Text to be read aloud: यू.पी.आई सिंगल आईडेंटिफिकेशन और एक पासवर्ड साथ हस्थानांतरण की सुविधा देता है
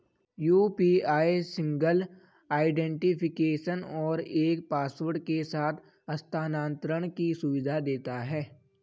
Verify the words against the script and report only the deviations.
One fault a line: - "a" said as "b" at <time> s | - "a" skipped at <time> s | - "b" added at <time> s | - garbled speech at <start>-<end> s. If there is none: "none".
- "के" added at 5.2 s